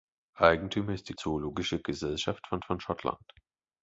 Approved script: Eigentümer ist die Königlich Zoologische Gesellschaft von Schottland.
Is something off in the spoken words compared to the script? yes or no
yes